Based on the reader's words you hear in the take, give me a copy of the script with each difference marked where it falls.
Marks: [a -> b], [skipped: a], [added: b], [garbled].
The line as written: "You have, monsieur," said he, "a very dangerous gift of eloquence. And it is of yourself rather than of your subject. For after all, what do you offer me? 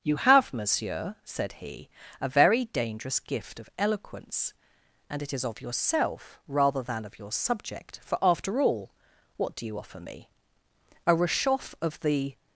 "You have, monsieur," said he, "a very dangerous gift of eloquence. And it is of yourself rather than of your subject. For after all, what do you offer me? [added: A rechauffe of the]